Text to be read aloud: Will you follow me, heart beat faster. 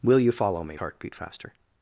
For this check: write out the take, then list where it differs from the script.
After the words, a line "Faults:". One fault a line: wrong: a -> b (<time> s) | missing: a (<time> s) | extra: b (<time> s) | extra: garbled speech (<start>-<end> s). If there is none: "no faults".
Will you follow me, heart beat faster.
Faults:
no faults